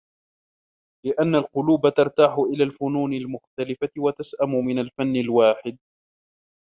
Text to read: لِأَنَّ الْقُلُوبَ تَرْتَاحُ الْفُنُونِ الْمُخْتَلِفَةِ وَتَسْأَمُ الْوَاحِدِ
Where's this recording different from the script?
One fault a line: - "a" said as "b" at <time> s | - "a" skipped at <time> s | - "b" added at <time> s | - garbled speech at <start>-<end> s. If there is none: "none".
- "إلَى" added at 2.4 s
- "مِنْ الْفَنِّ" added at 4.7 s